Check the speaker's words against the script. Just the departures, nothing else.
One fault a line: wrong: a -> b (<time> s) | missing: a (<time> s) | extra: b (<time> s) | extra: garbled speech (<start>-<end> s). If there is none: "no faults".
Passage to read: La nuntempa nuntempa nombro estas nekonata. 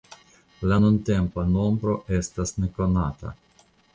missing: nuntempa (1.5 s)